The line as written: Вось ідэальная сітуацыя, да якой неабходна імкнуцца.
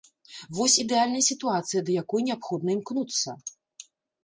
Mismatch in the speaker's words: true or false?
false